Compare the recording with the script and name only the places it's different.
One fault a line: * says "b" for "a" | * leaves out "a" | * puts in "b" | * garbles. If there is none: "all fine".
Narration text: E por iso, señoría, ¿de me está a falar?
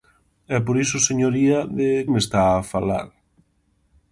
all fine